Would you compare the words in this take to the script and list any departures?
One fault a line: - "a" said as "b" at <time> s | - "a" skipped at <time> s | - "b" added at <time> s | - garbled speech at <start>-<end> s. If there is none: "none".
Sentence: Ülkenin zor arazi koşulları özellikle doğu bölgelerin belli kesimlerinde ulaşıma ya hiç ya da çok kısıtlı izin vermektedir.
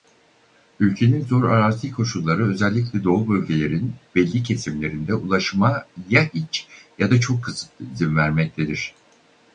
none